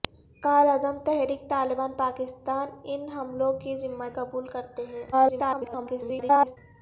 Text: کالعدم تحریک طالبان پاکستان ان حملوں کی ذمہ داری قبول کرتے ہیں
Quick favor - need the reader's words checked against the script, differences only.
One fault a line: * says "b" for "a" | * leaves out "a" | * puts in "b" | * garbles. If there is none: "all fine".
* leaves out "داری"
* garbles